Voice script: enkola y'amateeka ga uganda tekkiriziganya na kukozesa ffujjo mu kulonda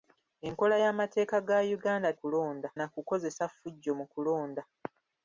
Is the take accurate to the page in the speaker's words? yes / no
no